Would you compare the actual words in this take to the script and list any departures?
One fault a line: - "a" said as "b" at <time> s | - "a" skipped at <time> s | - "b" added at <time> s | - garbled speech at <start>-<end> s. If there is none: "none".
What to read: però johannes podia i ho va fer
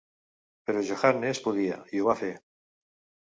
none